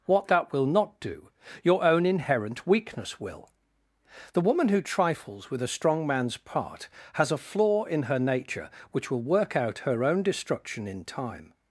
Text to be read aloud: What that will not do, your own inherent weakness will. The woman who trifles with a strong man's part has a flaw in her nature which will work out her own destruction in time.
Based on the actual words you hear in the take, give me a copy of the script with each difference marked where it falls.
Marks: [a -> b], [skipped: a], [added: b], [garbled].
What that will not do, your own inherent weakness will. The woman who trifles with a strong man's part has a flaw in her nature which will work out her own destruction in time.